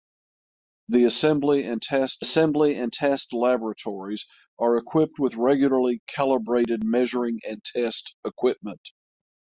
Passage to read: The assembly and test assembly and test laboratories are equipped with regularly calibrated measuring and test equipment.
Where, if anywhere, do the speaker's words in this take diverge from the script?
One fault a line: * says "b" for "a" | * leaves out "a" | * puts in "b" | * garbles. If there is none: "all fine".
all fine